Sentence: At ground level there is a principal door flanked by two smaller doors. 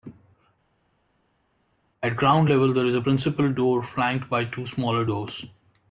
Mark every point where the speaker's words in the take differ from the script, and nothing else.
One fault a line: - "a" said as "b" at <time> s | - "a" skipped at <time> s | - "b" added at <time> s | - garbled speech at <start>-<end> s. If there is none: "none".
none